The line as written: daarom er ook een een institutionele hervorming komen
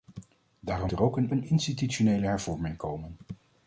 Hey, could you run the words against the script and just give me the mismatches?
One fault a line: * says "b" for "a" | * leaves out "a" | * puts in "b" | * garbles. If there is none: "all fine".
all fine